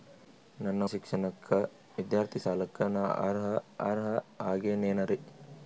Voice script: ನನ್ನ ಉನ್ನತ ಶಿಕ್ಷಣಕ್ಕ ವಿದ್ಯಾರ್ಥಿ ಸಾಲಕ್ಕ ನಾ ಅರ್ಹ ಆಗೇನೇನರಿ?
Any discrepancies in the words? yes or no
yes